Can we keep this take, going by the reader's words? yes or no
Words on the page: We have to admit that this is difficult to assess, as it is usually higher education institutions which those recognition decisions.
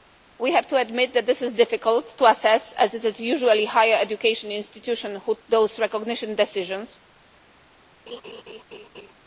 yes